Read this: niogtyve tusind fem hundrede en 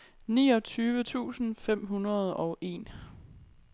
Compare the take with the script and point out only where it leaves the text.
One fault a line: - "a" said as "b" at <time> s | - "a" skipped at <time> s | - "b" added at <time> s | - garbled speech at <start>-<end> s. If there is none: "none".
- "og" added at 2.3 s